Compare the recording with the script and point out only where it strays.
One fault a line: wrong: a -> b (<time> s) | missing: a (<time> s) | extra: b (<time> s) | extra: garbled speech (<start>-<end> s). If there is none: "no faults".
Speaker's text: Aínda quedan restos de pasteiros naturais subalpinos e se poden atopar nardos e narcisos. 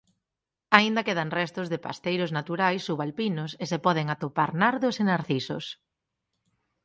no faults